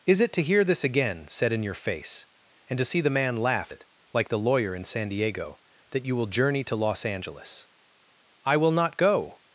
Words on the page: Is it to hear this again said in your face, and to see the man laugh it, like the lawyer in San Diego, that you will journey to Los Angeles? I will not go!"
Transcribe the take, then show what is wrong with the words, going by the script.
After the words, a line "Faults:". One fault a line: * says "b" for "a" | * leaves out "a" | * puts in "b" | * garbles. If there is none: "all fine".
Is it to hear this again said in your face, and to see the man laugh it, like the lawyer in San Diego, that you will journey to Los Angeles? I will not go!"
Faults:
all fine